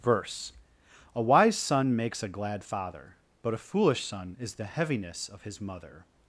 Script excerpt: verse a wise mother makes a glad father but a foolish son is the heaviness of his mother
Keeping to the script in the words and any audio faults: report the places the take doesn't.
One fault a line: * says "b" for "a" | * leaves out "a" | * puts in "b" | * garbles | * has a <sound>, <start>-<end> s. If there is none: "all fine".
* says "son" for "mother"